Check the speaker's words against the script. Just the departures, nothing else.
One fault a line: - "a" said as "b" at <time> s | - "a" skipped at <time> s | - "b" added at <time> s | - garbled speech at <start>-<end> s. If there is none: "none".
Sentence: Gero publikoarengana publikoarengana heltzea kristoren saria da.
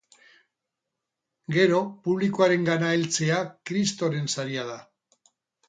- "publikoarengana" skipped at 2.9 s